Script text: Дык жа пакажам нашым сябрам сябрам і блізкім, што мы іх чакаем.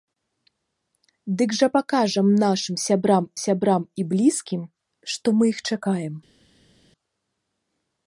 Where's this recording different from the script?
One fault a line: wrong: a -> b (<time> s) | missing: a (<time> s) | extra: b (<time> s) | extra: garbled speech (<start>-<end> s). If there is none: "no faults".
no faults